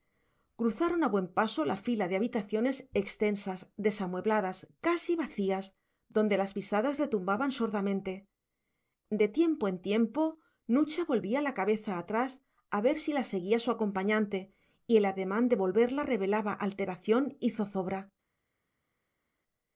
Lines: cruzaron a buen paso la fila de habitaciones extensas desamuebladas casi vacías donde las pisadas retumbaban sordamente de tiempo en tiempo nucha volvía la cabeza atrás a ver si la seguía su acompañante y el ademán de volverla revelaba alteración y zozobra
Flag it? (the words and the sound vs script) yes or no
no